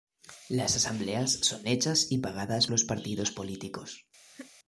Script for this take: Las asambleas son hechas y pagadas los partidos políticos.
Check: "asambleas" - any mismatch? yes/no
no